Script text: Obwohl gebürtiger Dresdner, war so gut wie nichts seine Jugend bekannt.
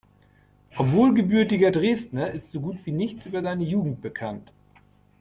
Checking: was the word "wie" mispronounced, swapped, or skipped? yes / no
no